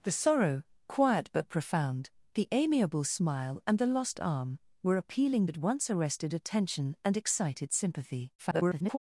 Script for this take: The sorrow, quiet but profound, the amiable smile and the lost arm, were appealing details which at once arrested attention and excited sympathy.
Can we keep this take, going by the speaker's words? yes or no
no